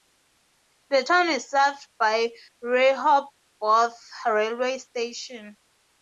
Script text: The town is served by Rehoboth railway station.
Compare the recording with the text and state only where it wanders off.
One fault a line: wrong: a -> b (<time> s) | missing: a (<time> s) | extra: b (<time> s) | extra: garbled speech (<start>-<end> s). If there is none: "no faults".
no faults